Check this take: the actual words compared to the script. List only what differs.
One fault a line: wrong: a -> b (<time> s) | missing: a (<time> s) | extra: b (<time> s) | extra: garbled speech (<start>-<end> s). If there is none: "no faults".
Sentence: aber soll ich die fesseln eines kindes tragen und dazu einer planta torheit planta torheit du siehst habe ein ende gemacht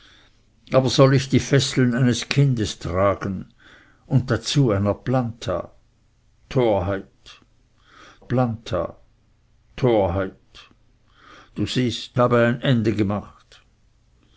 no faults